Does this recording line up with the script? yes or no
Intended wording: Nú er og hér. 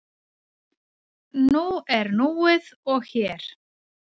no